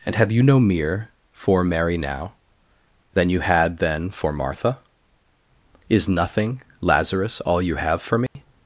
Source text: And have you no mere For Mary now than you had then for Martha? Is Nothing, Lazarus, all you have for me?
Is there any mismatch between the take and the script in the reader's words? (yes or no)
no